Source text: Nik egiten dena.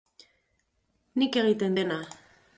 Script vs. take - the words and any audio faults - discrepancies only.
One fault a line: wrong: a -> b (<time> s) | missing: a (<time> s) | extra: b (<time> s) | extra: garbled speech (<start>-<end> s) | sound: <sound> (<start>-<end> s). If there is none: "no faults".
no faults